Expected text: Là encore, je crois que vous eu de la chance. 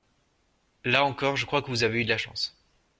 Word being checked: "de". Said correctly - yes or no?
yes